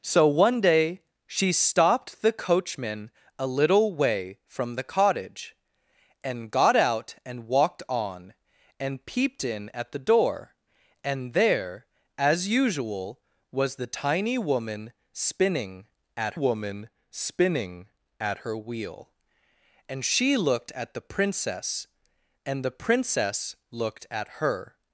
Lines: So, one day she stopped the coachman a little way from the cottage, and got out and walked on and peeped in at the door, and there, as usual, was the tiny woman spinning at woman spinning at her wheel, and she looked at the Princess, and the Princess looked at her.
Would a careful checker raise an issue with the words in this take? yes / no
no